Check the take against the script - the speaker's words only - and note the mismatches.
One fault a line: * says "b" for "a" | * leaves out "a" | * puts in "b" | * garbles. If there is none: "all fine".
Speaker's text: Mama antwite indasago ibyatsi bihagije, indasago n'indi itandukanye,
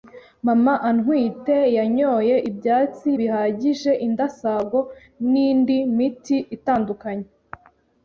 * says "yanyoye" for "indasago"
* puts in "miti"